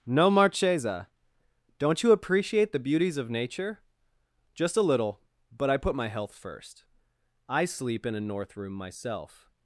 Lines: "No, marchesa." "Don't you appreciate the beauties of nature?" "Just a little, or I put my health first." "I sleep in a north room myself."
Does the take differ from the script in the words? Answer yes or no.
yes